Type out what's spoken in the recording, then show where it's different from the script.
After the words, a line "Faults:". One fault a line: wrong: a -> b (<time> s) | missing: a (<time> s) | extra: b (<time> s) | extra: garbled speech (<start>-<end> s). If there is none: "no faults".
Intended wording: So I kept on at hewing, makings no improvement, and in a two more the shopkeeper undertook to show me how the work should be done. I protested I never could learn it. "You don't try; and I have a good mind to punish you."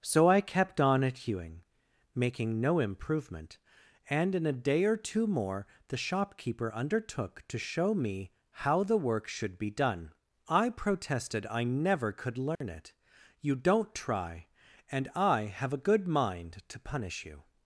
So I kept on at hewing, making no improvement, and in a day or two more the shopkeeper undertook to show me how the work should be done. I protested I never could learn it. "You don't try; and I have a good mind to punish you."
Faults:
wrong: makings -> making (2.1 s)
extra: day or (4.6 s)